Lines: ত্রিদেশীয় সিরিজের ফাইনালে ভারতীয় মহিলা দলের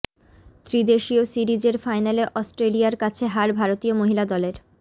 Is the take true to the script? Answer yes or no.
no